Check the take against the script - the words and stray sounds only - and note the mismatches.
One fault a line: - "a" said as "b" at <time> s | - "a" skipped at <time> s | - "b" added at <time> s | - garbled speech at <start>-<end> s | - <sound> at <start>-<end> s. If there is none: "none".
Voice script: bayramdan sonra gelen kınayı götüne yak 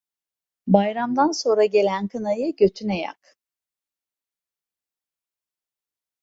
none